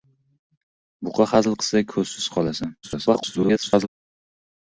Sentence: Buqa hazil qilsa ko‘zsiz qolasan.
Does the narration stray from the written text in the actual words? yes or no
yes